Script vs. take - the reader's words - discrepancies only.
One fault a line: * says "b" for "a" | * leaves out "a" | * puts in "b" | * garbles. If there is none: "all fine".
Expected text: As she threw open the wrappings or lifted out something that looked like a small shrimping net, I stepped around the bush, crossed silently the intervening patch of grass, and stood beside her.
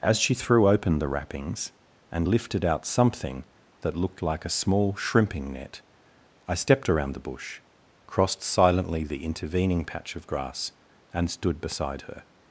* says "and" for "or"